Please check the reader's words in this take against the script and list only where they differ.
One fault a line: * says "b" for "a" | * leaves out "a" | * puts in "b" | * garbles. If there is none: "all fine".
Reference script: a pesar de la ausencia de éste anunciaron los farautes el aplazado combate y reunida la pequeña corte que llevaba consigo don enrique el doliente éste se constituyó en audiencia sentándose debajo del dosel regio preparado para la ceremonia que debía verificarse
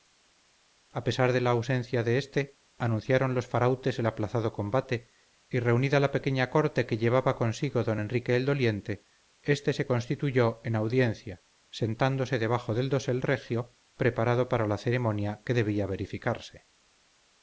all fine